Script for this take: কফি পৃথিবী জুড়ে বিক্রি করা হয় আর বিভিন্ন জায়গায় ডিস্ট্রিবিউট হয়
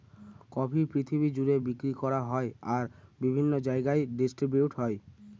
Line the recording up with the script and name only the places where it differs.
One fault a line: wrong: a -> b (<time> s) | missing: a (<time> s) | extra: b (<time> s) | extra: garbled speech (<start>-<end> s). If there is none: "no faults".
no faults